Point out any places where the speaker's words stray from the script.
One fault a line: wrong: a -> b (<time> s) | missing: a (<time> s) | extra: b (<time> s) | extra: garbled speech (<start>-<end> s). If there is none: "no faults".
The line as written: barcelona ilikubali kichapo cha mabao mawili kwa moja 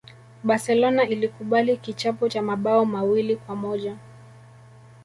no faults